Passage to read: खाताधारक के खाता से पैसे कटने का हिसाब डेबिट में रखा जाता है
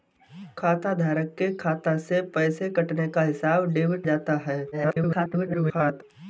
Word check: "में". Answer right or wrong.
wrong